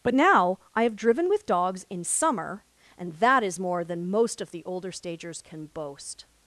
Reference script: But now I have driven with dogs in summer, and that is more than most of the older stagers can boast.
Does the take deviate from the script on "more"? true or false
false